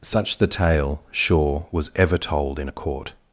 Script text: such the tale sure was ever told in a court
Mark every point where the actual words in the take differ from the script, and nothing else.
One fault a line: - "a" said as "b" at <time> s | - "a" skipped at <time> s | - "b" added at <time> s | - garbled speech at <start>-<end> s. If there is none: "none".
none